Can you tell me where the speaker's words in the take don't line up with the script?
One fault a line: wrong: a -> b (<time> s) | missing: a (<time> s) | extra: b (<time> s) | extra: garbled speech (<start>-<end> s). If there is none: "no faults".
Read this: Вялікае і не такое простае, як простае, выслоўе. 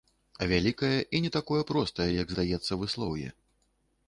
wrong: простае -> здаецца (2.3 s)